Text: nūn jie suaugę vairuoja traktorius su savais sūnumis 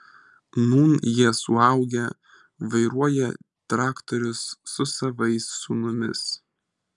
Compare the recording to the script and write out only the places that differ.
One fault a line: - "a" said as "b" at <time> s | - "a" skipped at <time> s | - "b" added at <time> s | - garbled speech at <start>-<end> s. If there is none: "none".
none